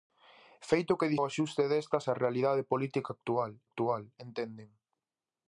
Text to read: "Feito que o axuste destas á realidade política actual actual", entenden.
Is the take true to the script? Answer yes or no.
yes